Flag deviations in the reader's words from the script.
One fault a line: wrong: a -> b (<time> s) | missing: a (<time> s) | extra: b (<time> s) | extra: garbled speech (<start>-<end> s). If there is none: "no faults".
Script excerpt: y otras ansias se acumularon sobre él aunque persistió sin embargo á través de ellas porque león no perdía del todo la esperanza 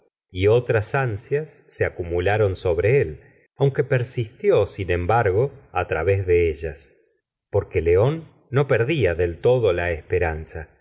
no faults